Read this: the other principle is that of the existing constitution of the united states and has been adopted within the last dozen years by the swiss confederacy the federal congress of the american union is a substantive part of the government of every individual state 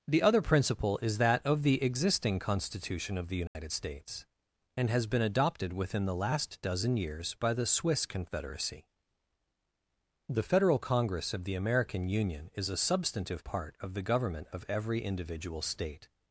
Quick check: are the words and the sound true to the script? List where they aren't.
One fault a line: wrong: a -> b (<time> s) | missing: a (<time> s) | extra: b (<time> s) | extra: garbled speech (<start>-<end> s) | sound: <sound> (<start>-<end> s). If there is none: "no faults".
sound: dropout (3.5-3.5 s)